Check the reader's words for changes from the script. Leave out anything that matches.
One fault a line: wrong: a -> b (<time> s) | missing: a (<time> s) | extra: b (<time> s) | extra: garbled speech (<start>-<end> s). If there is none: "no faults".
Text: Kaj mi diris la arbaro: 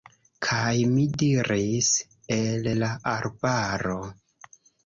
extra: el (2.4 s)